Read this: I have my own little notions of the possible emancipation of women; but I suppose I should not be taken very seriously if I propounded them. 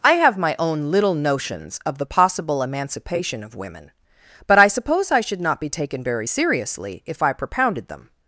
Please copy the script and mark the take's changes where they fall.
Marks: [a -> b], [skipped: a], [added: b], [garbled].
I have my own little notions of the possible emancipation of women; but I suppose I should not be taken very seriously if I propounded them.